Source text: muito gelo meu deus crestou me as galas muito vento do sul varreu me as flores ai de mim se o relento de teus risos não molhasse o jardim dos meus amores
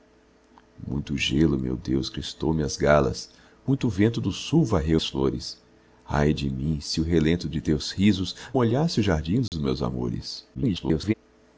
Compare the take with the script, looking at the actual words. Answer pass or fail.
fail